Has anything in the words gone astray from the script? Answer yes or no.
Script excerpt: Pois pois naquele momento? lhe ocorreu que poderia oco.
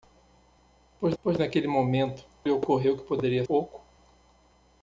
no